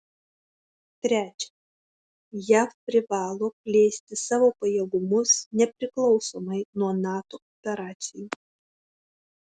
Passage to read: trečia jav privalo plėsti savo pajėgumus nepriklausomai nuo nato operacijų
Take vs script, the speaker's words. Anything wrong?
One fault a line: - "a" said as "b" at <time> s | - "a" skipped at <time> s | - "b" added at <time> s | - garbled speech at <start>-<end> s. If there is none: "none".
none